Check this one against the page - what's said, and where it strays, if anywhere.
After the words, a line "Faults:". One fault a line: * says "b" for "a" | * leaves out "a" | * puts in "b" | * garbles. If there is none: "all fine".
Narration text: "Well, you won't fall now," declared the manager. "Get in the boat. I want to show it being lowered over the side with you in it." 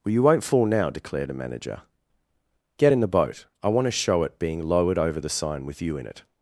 "Well, you won't fall now," declared a manager. "Get in the boat. I want to show it being lowered over the sign with you in it."
Faults:
* says "a" for "the"
* says "sign" for "side"